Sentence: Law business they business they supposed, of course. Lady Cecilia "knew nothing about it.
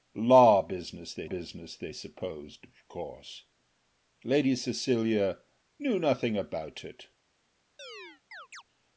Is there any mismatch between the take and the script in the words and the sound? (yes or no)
yes